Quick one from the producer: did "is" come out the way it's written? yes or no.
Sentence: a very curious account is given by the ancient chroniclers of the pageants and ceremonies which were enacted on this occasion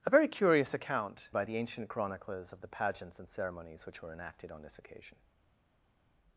no